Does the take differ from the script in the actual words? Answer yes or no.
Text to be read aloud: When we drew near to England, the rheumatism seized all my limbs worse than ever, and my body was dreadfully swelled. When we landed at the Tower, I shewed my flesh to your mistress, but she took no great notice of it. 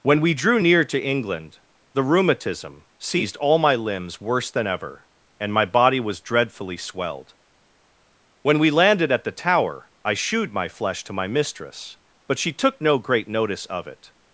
yes